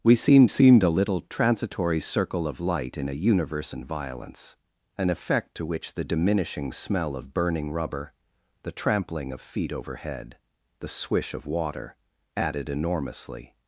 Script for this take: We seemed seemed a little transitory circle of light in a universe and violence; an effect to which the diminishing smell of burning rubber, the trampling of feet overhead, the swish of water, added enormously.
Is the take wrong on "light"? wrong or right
right